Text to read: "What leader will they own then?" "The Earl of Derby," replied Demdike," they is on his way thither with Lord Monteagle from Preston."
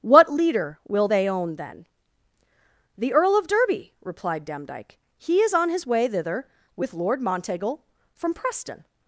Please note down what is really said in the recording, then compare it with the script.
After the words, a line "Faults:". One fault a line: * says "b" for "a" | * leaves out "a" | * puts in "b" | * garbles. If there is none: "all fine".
"What leader will they own then?" "The Earl of Derby," replied Demdike," he is on his way thither with Lord Monteagle from Preston."
Faults:
* says "he" for "they"